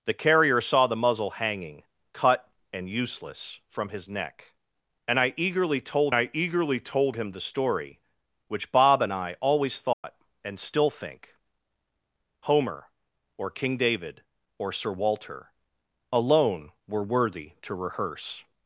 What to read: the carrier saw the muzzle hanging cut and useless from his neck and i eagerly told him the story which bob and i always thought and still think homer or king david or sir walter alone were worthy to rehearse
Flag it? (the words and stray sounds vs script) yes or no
yes